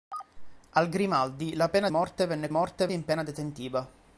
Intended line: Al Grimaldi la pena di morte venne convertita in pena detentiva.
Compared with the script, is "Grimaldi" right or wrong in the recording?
right